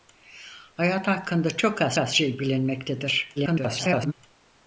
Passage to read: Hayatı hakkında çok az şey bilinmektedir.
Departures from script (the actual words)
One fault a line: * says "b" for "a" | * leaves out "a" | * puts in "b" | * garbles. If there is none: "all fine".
* puts in "az"
* garbles